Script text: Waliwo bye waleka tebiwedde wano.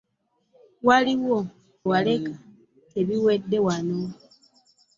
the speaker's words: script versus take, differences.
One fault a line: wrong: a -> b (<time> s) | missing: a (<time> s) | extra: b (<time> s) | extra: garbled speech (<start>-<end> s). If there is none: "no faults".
missing: bye (1.4 s)